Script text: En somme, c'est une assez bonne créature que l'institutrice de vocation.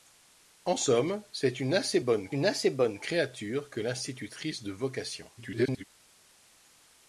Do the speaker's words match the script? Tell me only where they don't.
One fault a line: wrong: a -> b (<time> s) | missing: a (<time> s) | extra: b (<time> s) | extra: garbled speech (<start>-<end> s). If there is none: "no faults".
extra: une assez bonne (2.3 s)
extra: garbled speech (5.4-5.8 s)